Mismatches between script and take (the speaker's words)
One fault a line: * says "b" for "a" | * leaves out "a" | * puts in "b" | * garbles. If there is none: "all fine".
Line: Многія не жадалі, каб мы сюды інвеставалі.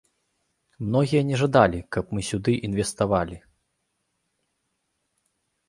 all fine